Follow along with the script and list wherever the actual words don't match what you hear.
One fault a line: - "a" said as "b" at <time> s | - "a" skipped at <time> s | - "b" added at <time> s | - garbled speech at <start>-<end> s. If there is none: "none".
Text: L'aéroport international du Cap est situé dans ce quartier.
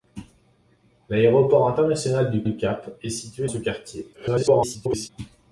- "du" added at 2.4 s
- "dans" skipped at 3.5 s
- garbled speech at 4.1-5.1 s